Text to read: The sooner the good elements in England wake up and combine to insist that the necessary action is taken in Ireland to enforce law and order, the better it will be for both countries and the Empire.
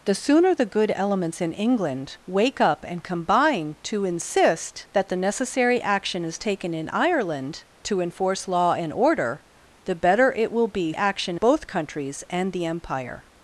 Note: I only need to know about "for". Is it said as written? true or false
false